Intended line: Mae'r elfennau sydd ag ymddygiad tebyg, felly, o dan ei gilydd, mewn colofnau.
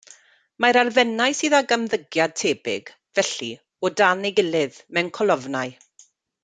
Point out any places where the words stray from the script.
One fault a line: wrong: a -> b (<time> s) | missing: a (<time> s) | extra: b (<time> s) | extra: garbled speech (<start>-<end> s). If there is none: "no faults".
no faults